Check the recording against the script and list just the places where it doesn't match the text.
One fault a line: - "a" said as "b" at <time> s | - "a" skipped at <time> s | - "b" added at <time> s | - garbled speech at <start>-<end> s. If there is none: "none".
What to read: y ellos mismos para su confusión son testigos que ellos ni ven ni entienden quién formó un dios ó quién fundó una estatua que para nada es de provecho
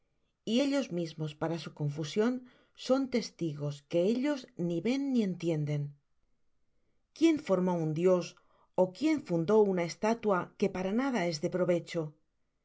none